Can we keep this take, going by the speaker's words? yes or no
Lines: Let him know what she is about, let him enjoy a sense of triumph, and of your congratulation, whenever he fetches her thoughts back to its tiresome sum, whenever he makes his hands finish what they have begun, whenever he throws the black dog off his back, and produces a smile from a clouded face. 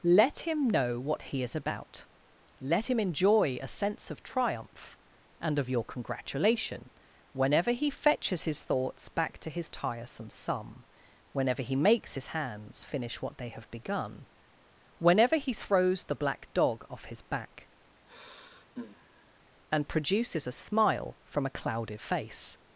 no